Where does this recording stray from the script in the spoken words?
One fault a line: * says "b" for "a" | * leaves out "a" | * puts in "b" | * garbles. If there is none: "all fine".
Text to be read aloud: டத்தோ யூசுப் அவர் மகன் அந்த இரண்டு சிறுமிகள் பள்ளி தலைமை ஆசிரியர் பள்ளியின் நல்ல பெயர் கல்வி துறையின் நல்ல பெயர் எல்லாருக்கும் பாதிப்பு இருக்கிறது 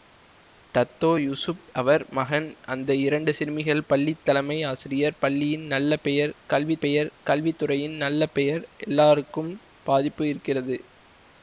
* puts in "பெயர் கல்வி"